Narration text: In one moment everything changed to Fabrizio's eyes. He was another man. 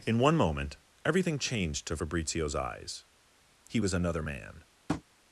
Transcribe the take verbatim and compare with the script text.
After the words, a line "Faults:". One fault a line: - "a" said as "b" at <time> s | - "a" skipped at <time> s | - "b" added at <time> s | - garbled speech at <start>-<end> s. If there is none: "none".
In one moment everything changed to Fabrizio's eyes. He was another man.
Faults:
none